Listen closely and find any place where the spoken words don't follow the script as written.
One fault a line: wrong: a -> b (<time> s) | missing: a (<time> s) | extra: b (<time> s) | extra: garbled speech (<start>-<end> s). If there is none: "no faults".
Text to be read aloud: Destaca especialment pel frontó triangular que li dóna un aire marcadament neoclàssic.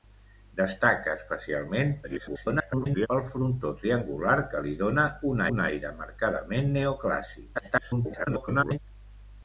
extra: garbled speech (2.0-3.1 s)
extra: un (5.5 s)
extra: garbled speech (7.6-8.8 s)